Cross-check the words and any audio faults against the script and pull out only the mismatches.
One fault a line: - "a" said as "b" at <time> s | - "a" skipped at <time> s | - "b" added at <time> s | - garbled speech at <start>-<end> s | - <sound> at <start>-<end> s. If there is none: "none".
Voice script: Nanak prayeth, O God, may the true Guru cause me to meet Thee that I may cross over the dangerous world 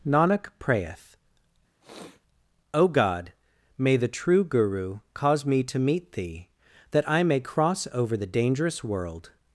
- sniff at 1.8-2.2 s